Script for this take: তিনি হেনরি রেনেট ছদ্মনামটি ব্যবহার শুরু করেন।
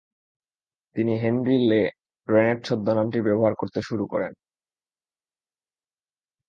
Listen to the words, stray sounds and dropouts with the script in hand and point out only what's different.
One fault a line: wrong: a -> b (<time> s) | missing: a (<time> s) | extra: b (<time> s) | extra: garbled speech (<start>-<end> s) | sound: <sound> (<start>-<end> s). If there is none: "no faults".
extra: লে (1.7 s)
extra: করতে (3.5 s)